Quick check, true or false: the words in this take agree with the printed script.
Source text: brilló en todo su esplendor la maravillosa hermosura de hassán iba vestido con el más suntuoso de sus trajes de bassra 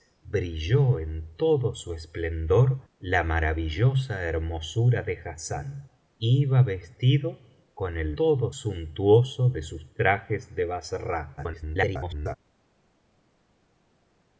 false